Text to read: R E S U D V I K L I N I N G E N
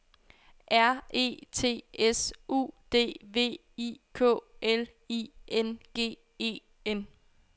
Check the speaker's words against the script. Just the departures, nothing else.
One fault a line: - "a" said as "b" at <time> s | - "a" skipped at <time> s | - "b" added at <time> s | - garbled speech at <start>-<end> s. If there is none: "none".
- "T" added at 1.5 s
- "I N" skipped at 5.8 s